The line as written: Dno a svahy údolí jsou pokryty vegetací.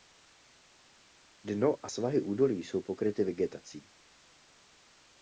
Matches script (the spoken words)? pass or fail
pass